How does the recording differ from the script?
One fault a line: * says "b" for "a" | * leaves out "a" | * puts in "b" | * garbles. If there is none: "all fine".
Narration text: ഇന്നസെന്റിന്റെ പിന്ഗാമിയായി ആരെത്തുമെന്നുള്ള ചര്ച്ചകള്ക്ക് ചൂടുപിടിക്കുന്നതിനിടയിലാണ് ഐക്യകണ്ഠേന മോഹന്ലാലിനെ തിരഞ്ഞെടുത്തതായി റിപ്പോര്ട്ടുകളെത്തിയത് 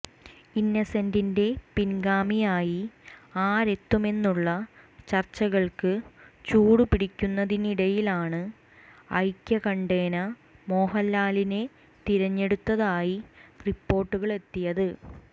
all fine